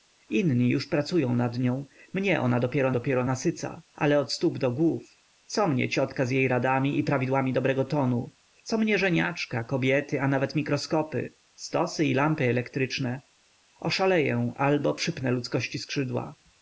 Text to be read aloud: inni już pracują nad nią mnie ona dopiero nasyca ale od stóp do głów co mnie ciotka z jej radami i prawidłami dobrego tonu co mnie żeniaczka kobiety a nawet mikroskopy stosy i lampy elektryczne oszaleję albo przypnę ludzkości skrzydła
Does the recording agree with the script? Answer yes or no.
no